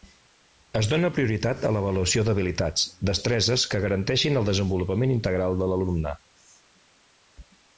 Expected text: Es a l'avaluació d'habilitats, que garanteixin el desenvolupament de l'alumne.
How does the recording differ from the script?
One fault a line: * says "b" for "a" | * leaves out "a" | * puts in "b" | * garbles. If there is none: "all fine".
* puts in "dóna prioritat"
* puts in "destreses"
* puts in "integral"